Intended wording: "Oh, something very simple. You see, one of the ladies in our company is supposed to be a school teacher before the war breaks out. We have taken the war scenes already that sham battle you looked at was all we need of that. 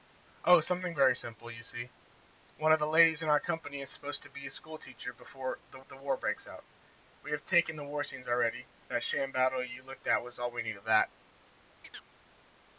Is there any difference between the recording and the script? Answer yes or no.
yes